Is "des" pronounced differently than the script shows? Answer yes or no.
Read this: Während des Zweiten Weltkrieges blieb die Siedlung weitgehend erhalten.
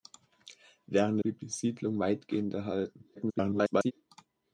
yes